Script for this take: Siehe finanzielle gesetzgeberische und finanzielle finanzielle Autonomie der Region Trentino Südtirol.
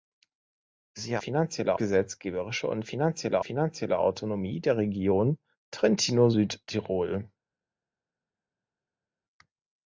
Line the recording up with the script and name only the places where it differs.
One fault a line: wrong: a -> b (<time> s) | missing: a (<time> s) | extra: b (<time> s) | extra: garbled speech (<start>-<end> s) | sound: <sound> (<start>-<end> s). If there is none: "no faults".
no faults